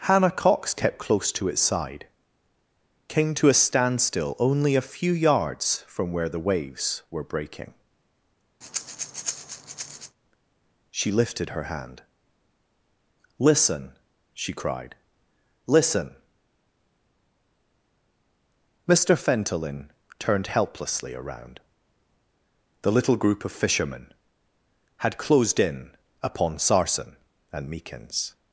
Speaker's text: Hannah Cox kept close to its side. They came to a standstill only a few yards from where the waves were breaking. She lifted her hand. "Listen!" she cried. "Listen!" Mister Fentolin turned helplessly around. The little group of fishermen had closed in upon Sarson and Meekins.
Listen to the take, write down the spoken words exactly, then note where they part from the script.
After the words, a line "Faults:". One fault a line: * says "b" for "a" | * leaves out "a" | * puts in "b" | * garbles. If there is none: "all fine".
Hannah Cox kept close to its side. came to a standstill only a few yards from where the waves were breaking. She lifted her hand. "Listen!" she cried. "Listen!" Mister Fentolin turned helplessly around. The little group of fishermen had closed in upon Sarson and Meekins.
Faults:
* leaves out "They"